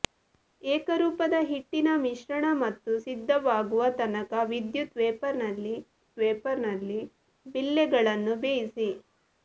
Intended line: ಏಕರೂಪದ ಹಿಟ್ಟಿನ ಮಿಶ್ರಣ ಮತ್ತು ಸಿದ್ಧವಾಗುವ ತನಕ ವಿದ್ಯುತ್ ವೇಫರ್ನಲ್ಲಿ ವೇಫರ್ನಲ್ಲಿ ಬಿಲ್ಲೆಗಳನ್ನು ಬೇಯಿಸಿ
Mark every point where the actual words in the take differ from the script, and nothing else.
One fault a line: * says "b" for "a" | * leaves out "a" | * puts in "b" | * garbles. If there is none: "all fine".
all fine